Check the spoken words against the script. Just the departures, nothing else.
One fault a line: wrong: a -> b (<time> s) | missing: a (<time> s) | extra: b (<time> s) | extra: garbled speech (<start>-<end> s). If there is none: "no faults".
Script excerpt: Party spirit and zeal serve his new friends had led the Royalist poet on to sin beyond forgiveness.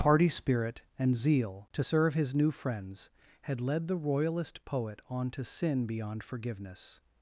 extra: to (1.7 s)